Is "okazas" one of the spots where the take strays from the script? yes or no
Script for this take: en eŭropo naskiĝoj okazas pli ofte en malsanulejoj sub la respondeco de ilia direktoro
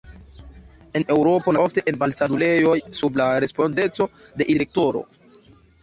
yes